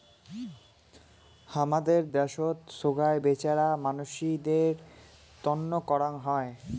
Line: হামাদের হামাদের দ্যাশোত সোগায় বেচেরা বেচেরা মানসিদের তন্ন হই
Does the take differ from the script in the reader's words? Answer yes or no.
yes